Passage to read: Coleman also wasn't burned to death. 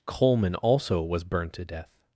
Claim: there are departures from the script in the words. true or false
true